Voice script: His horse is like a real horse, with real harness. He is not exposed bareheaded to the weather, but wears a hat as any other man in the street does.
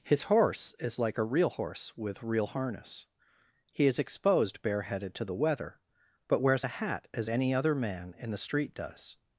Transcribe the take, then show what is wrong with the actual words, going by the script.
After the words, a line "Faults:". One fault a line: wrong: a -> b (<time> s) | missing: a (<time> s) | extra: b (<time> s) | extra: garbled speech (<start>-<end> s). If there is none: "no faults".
His horse is like a real horse, with real harness. He is exposed bareheaded to the weather, but wears a hat as any other man in the street does.
Faults:
missing: not (4.0 s)